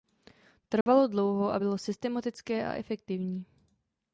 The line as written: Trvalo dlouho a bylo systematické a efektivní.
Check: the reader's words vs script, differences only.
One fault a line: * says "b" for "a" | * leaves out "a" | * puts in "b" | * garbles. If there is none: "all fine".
all fine